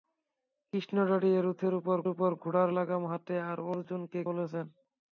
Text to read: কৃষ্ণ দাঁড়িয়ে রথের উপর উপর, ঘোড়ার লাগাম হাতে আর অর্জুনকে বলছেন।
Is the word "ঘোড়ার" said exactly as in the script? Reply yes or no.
yes